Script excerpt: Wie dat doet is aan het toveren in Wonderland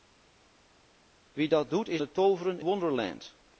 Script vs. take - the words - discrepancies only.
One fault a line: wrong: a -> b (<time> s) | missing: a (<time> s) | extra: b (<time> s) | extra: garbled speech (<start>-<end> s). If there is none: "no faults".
missing: aan (2.0 s)
missing: in (2.6 s)